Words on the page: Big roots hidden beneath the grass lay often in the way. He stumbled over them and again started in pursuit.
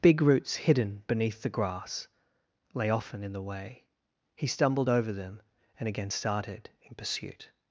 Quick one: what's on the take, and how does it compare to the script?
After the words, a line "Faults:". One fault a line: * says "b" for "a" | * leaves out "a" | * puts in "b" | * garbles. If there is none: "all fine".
Big roots hidden beneath the grass lay often in the way. He stumbled over them and again started in pursuit.
Faults:
all fine